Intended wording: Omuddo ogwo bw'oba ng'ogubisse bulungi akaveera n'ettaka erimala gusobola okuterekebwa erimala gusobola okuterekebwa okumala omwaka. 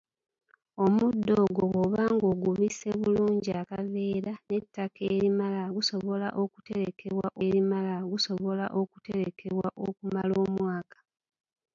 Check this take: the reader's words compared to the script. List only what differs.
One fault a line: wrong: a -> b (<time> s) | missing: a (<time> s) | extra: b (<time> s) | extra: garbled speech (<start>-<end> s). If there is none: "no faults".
no faults